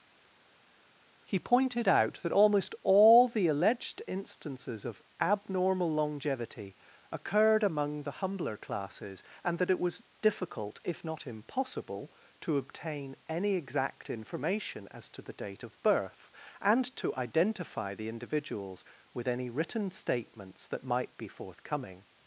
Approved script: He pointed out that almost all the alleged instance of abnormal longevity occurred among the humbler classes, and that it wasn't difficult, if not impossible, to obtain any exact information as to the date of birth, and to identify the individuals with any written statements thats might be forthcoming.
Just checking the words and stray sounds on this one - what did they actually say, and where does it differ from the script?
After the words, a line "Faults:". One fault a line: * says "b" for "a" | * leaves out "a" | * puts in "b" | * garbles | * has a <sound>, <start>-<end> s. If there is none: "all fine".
He pointed out that almost all the alleged instances of abnormal longevity occurred among the humbler classes, and that it was difficult, if not impossible, to obtain any exact information as to the date of birth, and to identify the individuals with any written statements that might be forthcoming.
Faults:
* says "instances" for "instance"
* says "was" for "wasn't"
* says "that" for "thats"